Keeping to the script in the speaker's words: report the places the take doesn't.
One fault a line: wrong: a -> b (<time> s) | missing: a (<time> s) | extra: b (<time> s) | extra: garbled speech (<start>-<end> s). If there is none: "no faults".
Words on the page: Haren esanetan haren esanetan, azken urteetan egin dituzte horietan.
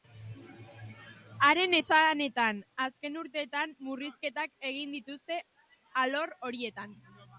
missing: haren esanetan (2.6 s)
extra: murrizketak (3.9 s)
extra: alor (6.0 s)